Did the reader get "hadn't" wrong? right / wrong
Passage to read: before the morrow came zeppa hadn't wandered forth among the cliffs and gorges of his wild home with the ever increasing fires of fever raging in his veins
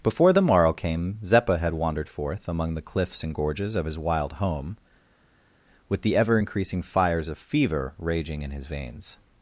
wrong